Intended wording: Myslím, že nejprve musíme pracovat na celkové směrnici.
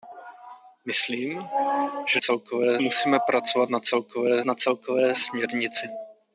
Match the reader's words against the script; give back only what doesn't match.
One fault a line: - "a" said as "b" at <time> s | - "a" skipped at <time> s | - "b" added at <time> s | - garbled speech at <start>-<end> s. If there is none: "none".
- "nejprve" said as "celkové" at 2.2 s
- "na celkové" added at 4.4 s